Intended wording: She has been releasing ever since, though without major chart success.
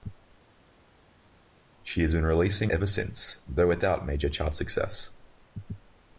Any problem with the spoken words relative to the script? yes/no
no